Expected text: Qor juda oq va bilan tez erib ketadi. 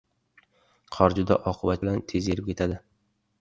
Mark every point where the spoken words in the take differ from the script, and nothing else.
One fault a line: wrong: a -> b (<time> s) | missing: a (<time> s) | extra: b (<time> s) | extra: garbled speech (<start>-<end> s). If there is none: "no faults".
no faults